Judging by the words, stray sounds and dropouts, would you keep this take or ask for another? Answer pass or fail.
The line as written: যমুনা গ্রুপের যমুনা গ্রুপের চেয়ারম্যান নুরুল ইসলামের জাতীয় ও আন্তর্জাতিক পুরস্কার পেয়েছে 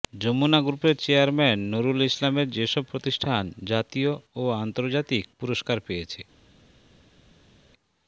fail